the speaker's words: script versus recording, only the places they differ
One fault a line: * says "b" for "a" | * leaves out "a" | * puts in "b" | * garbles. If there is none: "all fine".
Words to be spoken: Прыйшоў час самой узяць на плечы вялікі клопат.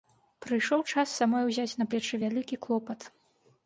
all fine